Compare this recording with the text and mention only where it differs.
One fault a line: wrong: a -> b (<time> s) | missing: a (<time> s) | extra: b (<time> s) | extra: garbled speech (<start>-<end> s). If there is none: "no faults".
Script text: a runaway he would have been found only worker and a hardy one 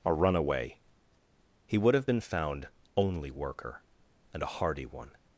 no faults